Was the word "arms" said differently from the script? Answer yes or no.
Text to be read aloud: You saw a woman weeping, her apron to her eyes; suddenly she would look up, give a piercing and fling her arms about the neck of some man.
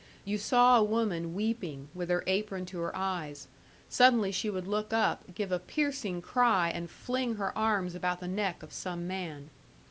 no